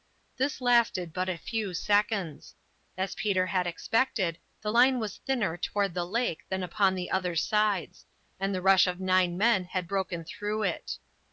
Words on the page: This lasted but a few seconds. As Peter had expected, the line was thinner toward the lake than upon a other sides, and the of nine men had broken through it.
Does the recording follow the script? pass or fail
fail